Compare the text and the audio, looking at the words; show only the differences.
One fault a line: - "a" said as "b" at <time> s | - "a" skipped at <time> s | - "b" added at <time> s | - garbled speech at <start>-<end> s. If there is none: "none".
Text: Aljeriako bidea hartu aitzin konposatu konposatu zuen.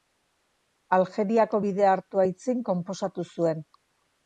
- "konposatu" skipped at 3.3 s